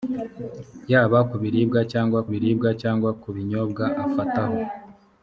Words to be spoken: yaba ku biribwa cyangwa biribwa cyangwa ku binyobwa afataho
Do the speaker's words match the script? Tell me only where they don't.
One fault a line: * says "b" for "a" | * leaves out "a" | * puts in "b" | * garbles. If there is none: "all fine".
all fine